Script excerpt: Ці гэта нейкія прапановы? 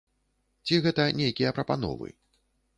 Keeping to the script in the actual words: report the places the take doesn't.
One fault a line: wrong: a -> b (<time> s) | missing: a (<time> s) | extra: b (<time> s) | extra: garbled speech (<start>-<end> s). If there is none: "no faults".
no faults